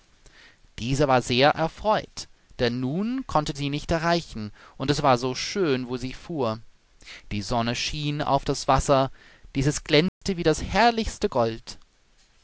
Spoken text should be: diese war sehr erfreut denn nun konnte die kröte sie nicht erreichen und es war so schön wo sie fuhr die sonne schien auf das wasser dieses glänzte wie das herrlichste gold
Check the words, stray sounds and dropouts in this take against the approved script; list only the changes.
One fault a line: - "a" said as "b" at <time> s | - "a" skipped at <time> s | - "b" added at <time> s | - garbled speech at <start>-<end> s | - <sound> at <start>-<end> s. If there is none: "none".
- "die kröte" skipped at 3.5 s
- dropout at 10.1-10.2 s